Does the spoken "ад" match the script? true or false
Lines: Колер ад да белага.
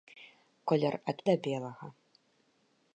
true